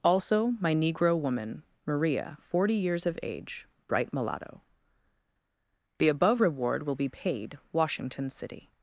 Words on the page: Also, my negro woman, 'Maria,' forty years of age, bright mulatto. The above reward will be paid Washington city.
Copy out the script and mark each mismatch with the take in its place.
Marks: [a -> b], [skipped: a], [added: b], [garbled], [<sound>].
Also, my negro woman, 'Maria,' forty years of age, bright mulatto. The above reward will be paid Washington city.